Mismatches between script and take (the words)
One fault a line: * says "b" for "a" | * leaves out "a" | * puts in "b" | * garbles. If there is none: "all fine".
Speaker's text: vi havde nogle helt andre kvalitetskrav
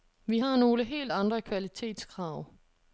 * says "har" for "havde"